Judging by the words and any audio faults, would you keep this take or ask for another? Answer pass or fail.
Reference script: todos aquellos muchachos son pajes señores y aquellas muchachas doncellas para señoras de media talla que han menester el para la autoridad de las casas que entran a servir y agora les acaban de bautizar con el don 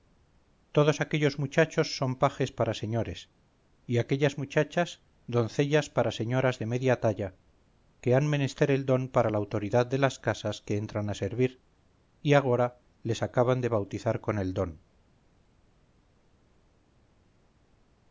fail